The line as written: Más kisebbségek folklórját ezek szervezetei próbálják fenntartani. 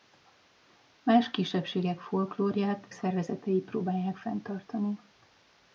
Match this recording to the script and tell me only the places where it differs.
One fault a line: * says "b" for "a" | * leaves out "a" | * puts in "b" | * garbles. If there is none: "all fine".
* leaves out "ezek"